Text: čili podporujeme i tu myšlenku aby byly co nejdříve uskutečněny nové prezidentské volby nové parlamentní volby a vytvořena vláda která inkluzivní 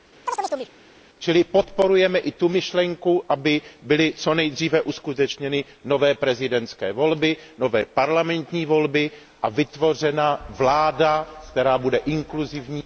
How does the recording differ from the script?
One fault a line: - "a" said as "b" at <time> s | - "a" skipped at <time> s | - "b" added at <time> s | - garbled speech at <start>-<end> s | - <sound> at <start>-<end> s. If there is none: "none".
- chirp at 0.3-0.7 s
- "bude" added at 11.8 s